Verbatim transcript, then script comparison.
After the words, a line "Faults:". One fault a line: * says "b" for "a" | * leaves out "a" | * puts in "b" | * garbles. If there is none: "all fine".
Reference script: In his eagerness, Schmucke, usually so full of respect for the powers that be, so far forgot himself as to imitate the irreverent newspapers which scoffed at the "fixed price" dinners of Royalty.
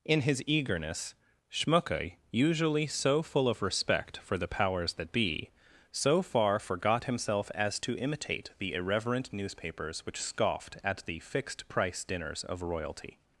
In his eagerness, Schmucke, usually so full of respect for the powers that be, so far forgot himself as to imitate the irreverent newspapers which scoffed at the "fixed price" dinners of Royalty.
Faults:
all fine